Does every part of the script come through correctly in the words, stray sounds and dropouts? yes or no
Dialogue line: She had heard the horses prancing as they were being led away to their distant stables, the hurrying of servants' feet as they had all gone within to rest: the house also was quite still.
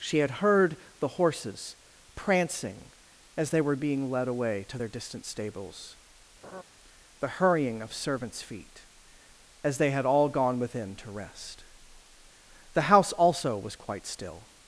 no